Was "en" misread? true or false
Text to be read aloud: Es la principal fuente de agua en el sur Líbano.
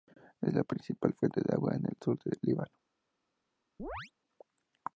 false